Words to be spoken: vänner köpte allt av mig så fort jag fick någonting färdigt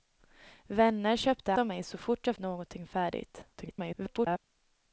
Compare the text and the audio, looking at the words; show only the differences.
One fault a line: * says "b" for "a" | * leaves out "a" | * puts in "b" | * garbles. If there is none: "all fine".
* leaves out "allt"
* leaves out "fick"
* garbles